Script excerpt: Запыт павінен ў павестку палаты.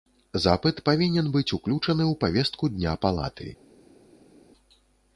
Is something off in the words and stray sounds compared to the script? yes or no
yes